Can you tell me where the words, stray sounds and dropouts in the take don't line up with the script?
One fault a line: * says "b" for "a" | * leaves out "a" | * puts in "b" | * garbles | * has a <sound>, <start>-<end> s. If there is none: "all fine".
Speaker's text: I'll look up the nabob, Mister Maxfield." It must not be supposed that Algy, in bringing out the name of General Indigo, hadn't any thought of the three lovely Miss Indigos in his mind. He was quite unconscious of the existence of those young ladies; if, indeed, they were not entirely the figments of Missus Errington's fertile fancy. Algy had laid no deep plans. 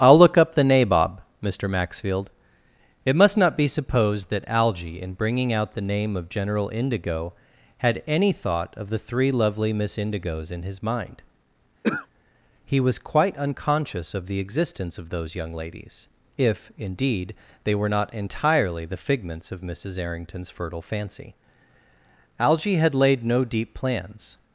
* says "had" for "hadn't"
* has a throat clearing, 11.8-12.1 s